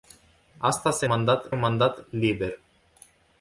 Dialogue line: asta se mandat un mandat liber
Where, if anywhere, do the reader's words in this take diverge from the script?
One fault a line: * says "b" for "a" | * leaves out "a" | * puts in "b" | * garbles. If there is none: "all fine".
all fine